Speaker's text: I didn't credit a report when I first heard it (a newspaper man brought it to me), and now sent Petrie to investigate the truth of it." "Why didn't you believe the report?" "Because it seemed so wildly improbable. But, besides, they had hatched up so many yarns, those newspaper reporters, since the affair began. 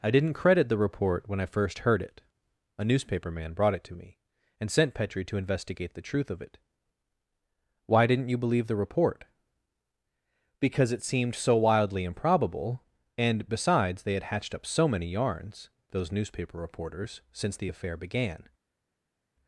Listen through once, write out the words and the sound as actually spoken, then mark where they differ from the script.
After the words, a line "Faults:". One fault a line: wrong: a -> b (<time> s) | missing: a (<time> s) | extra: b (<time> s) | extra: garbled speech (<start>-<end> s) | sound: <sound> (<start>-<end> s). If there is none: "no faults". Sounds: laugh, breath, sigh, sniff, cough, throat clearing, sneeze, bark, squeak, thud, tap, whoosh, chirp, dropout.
I didn't credit the report when I first heard it (a newspaper man brought it to me), and sent Petrie to investigate the truth of it." "Why didn't you believe the report?" "Because it seemed so wildly improbable. And, besides, they had hatched up so many yarns, those newspaper reporters, since the affair began.
Faults:
wrong: a -> the (0.7 s)
missing: now (4.7 s)
wrong: But -> And (13.2 s)